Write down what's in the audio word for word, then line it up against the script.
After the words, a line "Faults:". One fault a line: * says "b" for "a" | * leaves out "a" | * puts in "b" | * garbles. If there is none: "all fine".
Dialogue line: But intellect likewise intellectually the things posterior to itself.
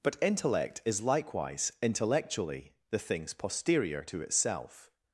But intellect is likewise intellectually the things posterior to itself.
Faults:
* puts in "is"